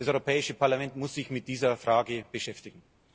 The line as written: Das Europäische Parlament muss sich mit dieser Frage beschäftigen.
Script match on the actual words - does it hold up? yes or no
yes